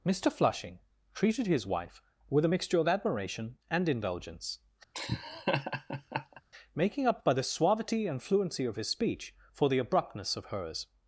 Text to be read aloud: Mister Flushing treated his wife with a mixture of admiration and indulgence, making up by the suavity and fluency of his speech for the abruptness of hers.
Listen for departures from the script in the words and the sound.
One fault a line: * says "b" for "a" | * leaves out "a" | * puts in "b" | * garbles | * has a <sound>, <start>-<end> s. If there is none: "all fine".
* has a laugh, 4.9-6.4 s